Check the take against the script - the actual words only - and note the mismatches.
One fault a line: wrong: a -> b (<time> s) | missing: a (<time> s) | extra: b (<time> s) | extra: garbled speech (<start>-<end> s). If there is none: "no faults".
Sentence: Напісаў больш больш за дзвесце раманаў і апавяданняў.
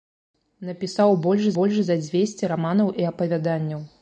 no faults